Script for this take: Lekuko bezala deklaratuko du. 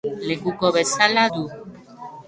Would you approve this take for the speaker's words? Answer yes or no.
no